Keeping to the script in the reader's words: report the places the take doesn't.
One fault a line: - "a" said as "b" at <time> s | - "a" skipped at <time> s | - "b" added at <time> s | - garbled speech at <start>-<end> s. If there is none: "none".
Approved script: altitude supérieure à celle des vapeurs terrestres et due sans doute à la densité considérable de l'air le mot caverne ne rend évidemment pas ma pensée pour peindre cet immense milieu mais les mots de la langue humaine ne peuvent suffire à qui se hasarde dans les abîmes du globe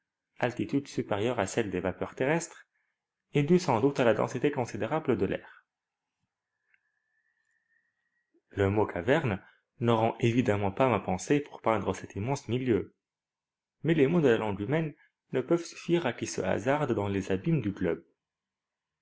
none